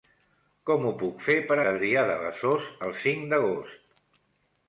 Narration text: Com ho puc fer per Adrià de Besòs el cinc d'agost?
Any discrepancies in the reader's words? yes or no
no